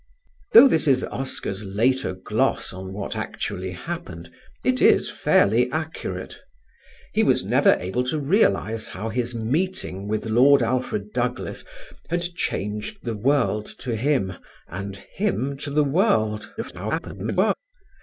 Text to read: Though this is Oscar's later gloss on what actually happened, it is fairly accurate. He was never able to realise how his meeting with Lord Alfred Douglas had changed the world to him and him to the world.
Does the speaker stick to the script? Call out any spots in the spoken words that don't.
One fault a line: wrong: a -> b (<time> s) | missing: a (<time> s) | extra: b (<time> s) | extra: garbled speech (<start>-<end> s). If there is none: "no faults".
extra: garbled speech (16.6-17.5 s)